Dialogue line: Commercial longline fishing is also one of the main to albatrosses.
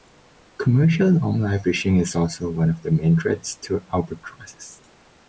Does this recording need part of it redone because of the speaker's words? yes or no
yes